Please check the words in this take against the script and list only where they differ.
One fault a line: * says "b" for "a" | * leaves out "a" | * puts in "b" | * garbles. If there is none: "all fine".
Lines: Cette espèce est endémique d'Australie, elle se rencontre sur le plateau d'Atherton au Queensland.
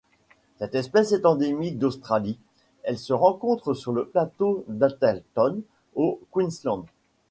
all fine